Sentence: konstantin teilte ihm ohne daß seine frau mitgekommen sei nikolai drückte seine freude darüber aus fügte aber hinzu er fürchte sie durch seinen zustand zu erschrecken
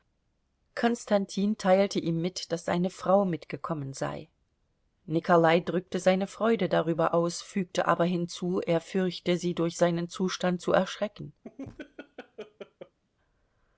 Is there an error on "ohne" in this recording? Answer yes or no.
yes